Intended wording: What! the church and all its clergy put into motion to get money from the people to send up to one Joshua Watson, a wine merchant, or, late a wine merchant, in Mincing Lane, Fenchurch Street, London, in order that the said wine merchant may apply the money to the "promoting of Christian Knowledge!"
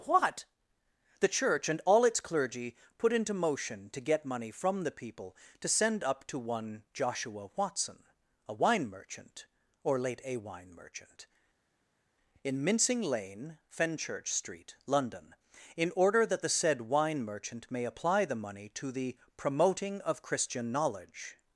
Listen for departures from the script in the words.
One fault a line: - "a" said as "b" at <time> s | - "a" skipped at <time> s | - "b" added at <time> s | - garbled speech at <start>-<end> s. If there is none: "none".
none